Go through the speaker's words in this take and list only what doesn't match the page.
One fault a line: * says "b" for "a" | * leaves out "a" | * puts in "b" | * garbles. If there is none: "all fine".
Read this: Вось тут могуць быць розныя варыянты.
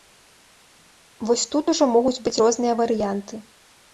* puts in "ужо"